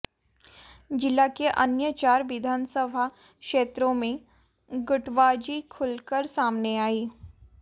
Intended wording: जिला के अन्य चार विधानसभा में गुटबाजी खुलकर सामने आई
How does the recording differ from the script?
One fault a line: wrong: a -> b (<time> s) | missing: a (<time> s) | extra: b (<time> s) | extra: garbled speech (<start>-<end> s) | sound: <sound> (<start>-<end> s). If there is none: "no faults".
extra: क्षेत्रों (3.1 s)